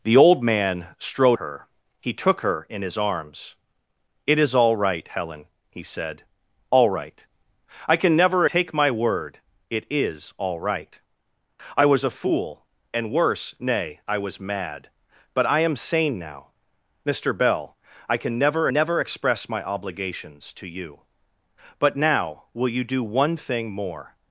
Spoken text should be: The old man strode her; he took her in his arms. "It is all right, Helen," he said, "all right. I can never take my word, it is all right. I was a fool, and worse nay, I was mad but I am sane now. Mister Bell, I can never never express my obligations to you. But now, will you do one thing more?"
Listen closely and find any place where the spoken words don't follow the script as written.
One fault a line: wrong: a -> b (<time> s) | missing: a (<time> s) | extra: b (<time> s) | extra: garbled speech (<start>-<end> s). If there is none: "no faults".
no faults